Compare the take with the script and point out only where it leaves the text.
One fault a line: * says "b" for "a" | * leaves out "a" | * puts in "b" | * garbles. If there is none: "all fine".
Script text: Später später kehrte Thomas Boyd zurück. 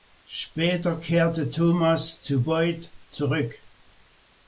* leaves out "später"
* puts in "zu"